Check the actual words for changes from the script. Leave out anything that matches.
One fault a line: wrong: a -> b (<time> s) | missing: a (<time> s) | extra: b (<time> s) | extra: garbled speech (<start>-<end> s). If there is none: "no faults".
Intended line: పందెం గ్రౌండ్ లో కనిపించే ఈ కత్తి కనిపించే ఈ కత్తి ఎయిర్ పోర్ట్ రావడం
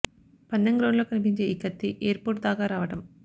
missing: కనిపించే ఈ కత్తి (1.9 s)
extra: దాకా (2.4 s)